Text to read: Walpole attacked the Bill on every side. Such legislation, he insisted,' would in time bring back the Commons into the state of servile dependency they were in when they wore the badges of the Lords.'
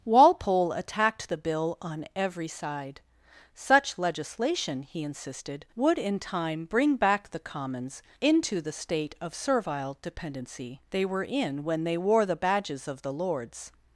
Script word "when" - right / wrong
right